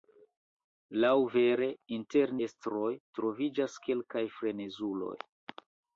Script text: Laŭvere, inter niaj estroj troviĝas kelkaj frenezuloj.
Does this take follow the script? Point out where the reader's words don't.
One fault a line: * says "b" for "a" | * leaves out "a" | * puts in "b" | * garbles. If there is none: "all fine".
* leaves out "niaj"